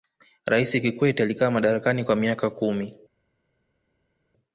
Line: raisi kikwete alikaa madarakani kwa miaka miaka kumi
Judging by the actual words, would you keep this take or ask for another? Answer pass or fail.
fail